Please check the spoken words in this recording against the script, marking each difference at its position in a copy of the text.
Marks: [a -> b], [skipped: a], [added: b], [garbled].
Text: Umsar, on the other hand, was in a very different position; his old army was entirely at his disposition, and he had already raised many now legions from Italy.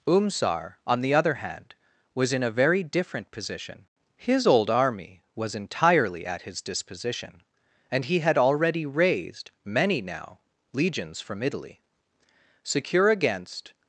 Umsar, on the other hand, was in a very different position; his old army was entirely at his disposition, and he had already raised many now legions from Italy. [added: Secure against]